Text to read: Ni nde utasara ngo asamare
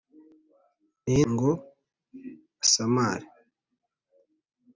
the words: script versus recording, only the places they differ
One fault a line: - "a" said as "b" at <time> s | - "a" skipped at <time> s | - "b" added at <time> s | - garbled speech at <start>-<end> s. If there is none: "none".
- "nde utasara" skipped at 1.2 s